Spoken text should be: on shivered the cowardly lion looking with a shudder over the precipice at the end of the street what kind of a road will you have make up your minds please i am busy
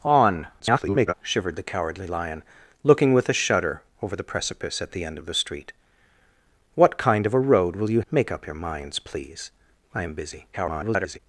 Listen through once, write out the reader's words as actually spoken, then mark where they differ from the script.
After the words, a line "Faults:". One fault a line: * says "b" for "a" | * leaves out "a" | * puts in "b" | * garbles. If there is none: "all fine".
on [garbled] shivered the cowardly lion looking with a shudder over the precipice at the end of the street what kind of a road will you make up your minds please i am busy [garbled]
Faults:
* garbles
* leaves out "have"
* garbles